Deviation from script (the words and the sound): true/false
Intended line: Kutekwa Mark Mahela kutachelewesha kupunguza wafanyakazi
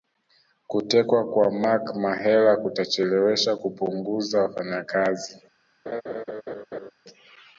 true